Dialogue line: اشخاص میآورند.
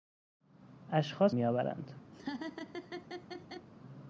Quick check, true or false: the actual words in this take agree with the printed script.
true